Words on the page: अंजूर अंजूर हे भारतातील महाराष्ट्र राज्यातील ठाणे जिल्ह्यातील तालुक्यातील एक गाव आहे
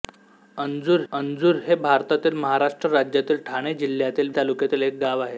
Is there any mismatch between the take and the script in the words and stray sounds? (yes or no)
no